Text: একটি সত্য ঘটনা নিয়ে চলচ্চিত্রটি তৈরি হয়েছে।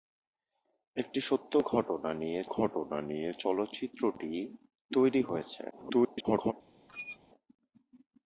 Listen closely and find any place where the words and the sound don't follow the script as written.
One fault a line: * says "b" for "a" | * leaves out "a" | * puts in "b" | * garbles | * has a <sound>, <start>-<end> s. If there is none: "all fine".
* puts in "ঘটনা নিয়ে"
* garbles
* has a squeak, 6.9-7.2 s